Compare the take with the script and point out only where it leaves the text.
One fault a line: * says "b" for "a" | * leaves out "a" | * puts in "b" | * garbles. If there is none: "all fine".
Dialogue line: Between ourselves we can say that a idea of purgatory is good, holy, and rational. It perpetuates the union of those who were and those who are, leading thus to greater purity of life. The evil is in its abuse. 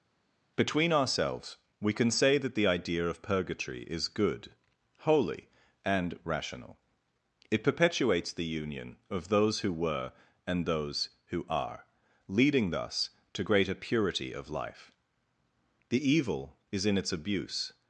* says "the" for "a"